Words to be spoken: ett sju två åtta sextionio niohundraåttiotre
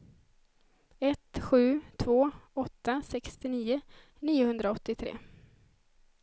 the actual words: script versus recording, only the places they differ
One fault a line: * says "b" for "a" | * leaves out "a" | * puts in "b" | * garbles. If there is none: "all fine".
all fine